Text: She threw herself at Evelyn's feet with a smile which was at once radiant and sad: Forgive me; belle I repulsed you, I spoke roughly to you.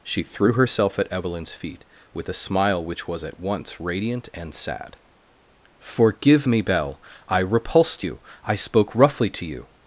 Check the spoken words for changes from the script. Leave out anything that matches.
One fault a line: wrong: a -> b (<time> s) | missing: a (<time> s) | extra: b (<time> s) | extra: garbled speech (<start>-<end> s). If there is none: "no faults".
no faults